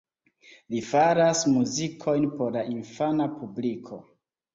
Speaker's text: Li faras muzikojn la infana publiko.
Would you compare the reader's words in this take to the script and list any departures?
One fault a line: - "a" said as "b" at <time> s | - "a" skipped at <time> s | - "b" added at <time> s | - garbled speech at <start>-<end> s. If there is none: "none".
- "por" added at 2.4 s